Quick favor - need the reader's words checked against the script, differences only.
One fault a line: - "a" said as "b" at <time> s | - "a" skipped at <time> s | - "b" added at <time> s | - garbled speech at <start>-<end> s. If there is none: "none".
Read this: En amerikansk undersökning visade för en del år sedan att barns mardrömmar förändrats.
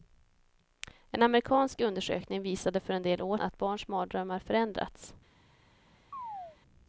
- "sedan" skipped at 3.4 s